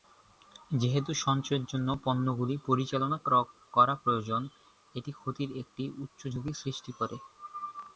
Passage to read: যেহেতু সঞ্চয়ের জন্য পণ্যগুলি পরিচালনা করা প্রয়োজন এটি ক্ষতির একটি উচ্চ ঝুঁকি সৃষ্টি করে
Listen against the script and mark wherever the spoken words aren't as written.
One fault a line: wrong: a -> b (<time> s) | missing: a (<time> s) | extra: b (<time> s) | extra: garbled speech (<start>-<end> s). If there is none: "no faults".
no faults